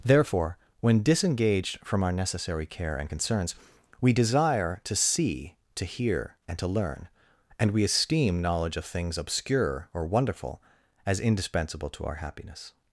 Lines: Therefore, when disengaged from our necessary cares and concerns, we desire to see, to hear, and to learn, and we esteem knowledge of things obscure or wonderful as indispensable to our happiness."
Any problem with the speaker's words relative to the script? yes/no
yes